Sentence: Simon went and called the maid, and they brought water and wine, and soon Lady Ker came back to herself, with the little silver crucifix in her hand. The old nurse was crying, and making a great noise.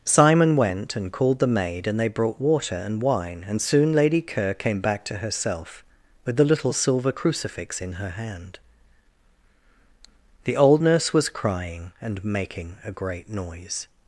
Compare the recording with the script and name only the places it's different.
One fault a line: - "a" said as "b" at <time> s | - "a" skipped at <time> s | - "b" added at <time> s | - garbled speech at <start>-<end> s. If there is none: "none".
none